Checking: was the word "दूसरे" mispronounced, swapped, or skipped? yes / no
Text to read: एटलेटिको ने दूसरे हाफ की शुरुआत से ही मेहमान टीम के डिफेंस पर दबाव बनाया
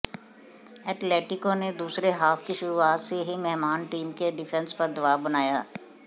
no